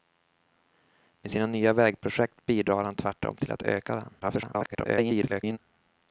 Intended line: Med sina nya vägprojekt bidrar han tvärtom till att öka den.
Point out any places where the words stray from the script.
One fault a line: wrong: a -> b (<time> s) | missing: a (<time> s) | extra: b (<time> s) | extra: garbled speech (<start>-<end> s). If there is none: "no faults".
extra: garbled speech (4.2-5.6 s)